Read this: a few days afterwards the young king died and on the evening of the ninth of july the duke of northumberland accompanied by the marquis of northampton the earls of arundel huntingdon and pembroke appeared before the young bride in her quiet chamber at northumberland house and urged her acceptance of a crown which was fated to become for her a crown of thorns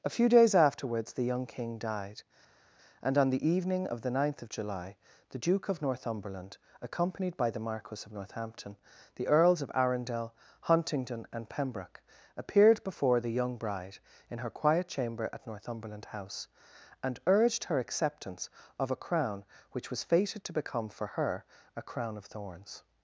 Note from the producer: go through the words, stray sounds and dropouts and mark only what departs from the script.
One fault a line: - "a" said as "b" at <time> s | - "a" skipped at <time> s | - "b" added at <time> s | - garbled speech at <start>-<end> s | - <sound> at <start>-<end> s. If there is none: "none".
none